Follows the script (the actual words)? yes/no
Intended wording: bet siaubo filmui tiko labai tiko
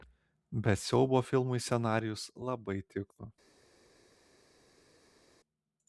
no